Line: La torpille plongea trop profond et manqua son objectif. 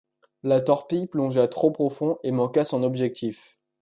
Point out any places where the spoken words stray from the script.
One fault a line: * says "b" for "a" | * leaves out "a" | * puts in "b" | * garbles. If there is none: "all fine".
all fine